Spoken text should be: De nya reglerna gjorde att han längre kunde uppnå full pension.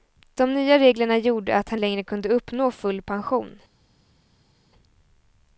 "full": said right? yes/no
yes